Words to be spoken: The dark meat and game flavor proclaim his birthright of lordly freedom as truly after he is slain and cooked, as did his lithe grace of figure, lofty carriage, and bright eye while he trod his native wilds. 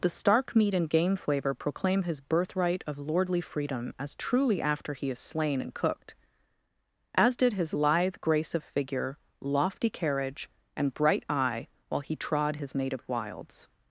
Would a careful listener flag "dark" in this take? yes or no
yes